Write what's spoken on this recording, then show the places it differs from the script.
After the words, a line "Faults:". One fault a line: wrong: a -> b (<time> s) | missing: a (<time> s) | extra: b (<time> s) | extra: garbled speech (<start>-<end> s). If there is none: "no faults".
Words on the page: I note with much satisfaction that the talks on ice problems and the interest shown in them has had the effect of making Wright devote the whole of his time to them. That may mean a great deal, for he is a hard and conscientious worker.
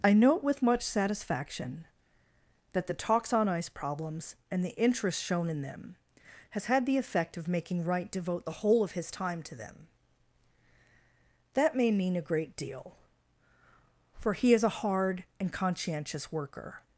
I note with much satisfaction that the talks on ice problems and the interest shown in them has had the effect of making Wright devote the whole of his time to them. That may mean a great deal, for he is a hard and conscientious worker.
Faults:
no faults